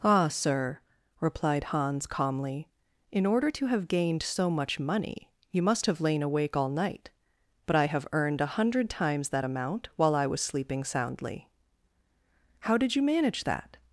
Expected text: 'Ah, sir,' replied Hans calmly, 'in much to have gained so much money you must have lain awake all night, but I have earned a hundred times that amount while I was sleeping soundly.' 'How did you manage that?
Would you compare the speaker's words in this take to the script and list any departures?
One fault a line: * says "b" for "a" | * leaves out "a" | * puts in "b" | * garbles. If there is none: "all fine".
* says "order" for "much"